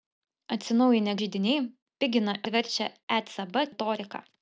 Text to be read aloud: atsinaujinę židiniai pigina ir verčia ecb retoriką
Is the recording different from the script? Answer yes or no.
no